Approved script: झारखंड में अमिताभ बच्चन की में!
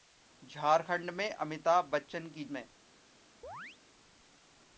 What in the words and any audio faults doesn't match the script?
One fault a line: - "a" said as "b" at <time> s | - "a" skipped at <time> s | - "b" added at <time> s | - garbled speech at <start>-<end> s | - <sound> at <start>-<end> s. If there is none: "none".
- chirp at 3.4-3.8 s